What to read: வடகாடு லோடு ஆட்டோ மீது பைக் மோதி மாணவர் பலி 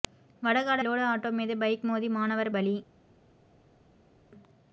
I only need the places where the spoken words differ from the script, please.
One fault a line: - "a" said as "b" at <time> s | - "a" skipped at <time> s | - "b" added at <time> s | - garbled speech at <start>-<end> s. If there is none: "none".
none